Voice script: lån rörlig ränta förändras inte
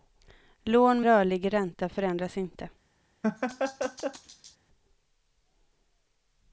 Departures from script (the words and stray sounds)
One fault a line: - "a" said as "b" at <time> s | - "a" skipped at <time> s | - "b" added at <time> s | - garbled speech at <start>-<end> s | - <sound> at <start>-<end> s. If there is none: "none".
- laugh at 3.2-4.6 s